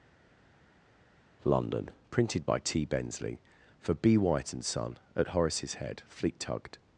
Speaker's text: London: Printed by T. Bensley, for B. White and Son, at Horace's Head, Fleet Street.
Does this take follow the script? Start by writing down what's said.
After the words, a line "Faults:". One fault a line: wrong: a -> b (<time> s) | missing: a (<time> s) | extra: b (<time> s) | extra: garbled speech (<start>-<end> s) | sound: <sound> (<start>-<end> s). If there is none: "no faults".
London: Printed by T. Bensley, for B. White and Son, at Horace's Head, Fleet Tugged.
Faults:
wrong: Street -> Tugged (6.4 s)